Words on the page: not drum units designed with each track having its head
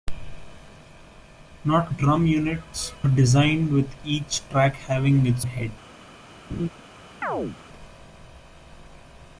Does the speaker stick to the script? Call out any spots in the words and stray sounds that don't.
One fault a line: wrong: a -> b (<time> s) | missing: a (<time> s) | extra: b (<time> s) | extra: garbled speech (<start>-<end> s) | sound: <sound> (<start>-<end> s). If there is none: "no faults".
sound: laugh (6.5-6.7 s)
sound: chirp (7.2-7.6 s)